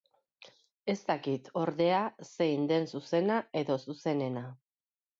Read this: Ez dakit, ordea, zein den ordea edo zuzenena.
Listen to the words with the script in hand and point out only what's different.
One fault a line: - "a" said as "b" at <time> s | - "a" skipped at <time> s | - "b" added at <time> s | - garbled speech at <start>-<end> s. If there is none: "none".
- "ordea" said as "zuzena" at 2.9 s